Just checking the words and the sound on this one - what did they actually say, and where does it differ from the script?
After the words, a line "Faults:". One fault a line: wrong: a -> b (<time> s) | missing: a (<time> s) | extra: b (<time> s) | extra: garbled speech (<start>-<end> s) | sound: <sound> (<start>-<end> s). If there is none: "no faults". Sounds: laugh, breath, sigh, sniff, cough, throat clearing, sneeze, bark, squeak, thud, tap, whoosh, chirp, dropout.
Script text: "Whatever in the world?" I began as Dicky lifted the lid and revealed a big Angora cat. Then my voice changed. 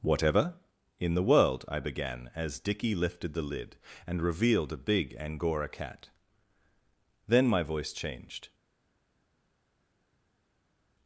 "Whatever in the world?" I began as Dicky lifted the lid and revealed a big Angora cat. Then my voice changed.
Faults:
no faults